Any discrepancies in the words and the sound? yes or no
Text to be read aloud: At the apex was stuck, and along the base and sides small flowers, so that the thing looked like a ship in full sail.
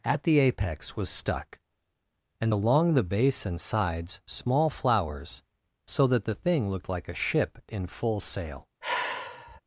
yes